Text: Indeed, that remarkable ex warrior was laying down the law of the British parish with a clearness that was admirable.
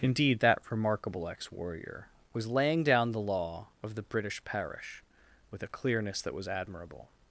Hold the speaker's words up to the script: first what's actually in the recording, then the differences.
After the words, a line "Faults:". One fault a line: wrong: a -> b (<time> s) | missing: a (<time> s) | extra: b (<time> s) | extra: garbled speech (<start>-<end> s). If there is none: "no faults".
Indeed, that remarkable ex warrior was laying down the law of the British parish with a clearness that was admirable.
Faults:
no faults